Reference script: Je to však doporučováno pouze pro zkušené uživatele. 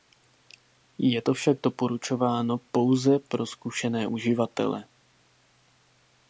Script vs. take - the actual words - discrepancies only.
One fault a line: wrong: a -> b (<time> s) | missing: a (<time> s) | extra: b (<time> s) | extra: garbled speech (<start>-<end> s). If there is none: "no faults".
no faults